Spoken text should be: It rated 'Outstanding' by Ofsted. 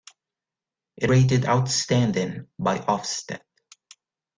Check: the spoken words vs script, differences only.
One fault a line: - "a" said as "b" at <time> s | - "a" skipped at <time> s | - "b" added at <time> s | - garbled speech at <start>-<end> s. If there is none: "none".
none